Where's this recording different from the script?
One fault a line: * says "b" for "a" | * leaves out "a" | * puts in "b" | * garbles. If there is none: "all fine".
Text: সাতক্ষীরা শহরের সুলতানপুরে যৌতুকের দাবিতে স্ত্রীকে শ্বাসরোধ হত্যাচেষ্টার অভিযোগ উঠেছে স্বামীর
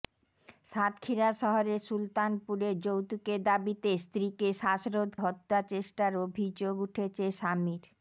all fine